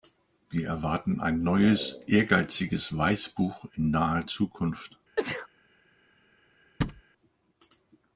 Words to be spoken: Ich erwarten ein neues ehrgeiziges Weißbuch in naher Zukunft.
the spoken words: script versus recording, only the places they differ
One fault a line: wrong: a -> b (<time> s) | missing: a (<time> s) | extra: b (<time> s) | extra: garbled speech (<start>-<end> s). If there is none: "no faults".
wrong: Ich -> Wir (0.5 s)